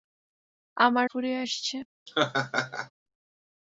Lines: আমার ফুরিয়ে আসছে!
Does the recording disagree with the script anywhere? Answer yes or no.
no